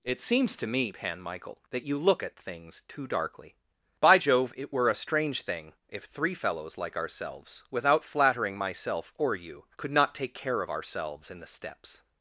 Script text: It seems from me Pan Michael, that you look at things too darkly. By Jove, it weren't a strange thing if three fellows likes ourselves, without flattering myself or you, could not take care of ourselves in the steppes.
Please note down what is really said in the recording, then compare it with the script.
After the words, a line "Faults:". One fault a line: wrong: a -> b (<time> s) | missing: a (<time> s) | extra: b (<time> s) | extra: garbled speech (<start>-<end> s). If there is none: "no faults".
It seems to me Pan Michael, that you look at things too darkly. By Jove, it were a strange thing if three fellows like ourselves, without flattering myself or you, could not take care of ourselves in the steppes.
Faults:
wrong: from -> to (0.6 s)
wrong: weren't -> were (4.7 s)
wrong: likes -> like (6.8 s)